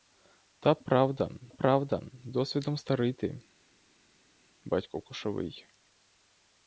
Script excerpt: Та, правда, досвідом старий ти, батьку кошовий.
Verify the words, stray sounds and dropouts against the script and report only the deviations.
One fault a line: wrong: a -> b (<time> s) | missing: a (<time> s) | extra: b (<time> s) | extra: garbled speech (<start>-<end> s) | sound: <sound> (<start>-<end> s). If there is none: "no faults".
extra: правда (1.5 s)